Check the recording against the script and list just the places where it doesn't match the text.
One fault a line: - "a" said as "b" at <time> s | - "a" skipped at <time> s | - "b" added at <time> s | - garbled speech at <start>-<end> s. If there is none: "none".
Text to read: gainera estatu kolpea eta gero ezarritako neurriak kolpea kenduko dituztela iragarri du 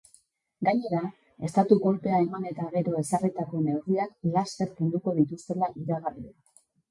- "eman" added at 2.2 s
- "kolpea" said as "laster" at 4.4 s